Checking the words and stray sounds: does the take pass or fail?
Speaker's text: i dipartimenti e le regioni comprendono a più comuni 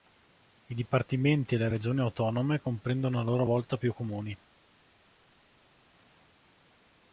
fail